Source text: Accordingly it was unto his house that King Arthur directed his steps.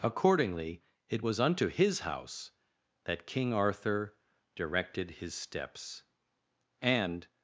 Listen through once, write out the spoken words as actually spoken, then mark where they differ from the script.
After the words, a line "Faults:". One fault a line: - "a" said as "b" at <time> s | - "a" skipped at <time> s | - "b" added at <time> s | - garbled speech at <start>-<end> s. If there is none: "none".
Accordingly it was unto his house that King Arthur directed his steps. And
Faults:
- "And" added at 6.8 s